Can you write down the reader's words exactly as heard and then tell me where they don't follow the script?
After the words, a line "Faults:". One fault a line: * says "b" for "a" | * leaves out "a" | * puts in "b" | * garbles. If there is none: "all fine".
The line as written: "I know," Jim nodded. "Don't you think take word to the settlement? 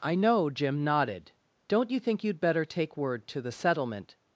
"I know," Jim nodded. "Don't you think you'd better take word to the settlement?
Faults:
* puts in "you'd better"